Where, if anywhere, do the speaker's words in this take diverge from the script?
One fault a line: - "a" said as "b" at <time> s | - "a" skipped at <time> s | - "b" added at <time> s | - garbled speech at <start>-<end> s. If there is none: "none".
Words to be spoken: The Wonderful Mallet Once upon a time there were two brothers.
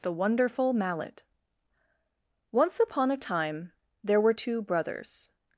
none